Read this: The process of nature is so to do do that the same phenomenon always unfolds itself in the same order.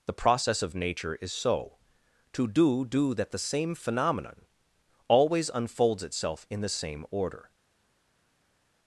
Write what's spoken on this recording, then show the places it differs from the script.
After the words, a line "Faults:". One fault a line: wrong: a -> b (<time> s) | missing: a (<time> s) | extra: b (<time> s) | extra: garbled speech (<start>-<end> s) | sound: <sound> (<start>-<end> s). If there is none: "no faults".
The process of nature is so to do do that the same phenomenon always unfolds itself in the same order.
Faults:
no faults